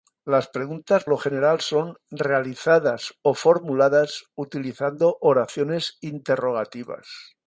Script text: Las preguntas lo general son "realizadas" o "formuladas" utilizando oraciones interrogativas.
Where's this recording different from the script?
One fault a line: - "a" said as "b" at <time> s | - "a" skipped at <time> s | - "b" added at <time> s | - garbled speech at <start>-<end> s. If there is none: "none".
none